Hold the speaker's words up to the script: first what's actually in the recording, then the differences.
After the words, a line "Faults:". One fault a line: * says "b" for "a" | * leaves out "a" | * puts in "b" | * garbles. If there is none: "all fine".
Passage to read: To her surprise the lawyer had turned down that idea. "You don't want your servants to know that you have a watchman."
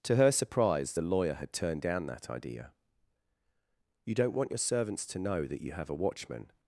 To her surprise the lawyer had turned down that idea. "You don't want your servants to know that you have a watchman."
Faults:
all fine